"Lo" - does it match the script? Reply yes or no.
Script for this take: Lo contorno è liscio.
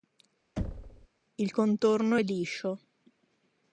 no